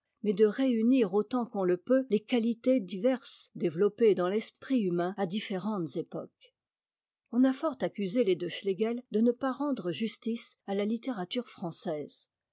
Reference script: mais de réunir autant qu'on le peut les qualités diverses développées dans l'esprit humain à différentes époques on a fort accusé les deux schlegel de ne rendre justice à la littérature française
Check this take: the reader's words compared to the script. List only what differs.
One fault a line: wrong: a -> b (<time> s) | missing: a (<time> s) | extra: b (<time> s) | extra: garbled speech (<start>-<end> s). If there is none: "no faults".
extra: pas (9.3 s)